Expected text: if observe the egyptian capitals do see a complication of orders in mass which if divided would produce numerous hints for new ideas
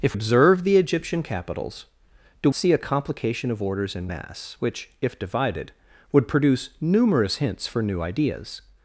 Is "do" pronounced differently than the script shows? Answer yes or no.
no